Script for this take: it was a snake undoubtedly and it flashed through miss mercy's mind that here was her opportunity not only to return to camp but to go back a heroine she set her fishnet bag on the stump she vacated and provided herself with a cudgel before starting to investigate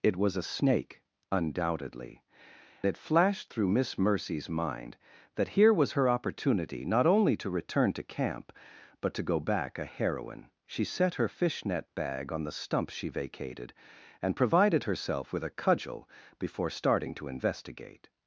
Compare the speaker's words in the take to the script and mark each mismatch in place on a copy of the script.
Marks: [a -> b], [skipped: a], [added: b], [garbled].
it was a snake undoubtedly [skipped: and] it flashed through miss mercy's mind that here was her opportunity not only to return to camp but to go back a heroine she set her fishnet bag on the stump she vacated and provided herself with a cudgel before starting to investigate